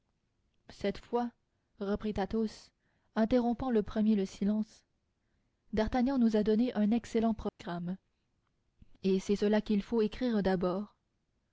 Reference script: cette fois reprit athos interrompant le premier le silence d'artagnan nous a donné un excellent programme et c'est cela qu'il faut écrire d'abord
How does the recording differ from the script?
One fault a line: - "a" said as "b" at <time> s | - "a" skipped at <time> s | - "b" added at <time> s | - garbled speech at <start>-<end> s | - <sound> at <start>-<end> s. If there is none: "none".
- dropout at 7.5-7.6 s